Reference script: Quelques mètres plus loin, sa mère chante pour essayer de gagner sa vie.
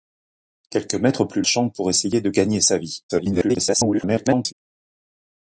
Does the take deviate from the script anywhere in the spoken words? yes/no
yes